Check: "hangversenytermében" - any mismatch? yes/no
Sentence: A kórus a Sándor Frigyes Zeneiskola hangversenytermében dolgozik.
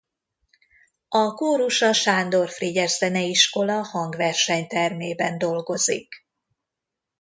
no